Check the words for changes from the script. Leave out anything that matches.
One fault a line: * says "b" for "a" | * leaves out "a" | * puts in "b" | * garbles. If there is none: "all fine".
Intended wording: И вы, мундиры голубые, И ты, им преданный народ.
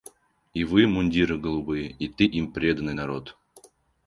all fine